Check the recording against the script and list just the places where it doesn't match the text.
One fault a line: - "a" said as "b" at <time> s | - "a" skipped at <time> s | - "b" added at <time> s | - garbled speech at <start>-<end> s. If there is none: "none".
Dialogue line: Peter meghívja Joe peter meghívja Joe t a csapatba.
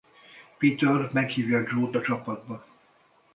- "peter meghívja Joe" skipped at 1.9 s